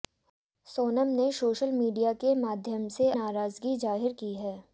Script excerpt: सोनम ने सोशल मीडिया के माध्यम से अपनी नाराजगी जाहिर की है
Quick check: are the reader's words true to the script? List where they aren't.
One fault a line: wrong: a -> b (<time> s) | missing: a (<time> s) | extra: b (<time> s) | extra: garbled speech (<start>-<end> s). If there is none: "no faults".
missing: अपनी (3.1 s)